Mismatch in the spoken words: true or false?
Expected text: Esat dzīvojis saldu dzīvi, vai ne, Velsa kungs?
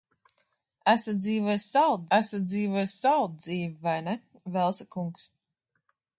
true